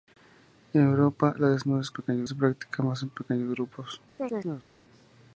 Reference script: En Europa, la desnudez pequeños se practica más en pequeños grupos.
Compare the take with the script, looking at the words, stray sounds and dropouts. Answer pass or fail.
fail